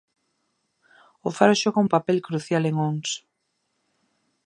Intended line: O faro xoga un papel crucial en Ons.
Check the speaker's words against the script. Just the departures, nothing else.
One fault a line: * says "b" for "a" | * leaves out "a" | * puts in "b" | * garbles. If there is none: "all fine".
all fine